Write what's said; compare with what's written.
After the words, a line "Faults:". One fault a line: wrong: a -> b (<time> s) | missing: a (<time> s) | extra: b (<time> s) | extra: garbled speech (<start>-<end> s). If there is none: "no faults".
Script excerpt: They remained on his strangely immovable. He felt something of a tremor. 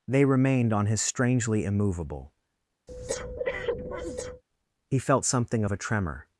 They remained on his strangely immovable. He felt something of a tremor.
Faults:
no faults